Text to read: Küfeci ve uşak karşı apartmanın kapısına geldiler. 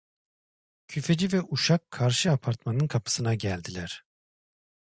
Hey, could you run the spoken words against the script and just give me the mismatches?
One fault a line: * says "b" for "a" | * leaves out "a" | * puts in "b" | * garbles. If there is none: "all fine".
all fine